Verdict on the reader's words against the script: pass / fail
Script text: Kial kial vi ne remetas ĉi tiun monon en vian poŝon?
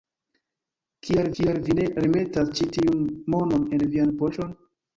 pass